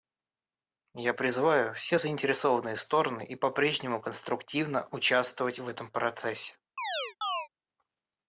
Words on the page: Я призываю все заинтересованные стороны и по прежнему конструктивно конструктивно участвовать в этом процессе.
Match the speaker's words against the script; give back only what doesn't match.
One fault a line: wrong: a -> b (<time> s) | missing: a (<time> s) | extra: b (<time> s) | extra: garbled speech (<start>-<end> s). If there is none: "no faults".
missing: конструктивно (4.9 s)